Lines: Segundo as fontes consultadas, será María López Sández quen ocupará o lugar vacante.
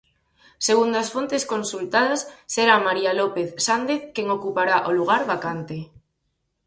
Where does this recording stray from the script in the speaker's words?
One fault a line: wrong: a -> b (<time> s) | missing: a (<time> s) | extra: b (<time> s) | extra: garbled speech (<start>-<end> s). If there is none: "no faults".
no faults